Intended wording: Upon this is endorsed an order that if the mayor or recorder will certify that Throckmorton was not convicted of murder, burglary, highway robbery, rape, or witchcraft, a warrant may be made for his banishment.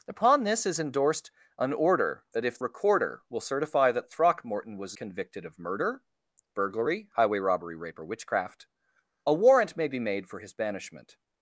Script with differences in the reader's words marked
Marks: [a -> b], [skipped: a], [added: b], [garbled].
Upon this is endorsed an order that if [skipped: the mayor or] recorder will certify that Throckmorton was [skipped: not] convicted of murder, burglary, highway robbery, rape, or witchcraft, a warrant may be made for his banishment.